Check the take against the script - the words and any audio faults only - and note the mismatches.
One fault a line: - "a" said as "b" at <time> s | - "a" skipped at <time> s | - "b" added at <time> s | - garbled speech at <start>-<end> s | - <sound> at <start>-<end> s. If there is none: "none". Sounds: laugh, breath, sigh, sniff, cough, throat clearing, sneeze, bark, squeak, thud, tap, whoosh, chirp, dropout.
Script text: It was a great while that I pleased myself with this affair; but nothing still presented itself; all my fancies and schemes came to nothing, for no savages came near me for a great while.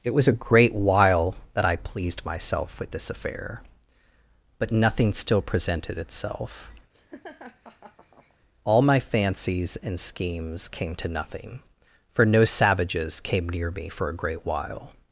- laugh at 6.9-8.4 s